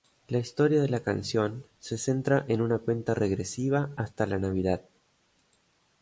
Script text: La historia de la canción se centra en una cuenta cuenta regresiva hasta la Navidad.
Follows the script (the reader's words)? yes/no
no